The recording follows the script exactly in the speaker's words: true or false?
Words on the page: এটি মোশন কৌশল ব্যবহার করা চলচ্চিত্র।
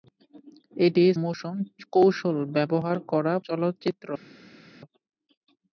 true